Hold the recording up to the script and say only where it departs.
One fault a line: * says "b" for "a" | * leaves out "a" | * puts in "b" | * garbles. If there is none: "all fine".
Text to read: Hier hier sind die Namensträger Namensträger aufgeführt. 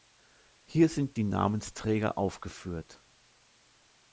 * leaves out "hier"
* leaves out "Namensträger"